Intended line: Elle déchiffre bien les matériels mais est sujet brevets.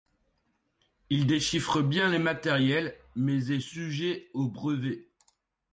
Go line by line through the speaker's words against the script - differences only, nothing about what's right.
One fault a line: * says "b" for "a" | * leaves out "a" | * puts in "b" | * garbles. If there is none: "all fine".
* says "Il" for "Elle"
* puts in "aux"